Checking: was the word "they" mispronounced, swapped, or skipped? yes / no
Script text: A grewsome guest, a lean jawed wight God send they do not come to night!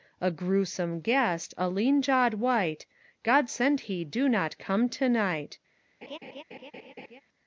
yes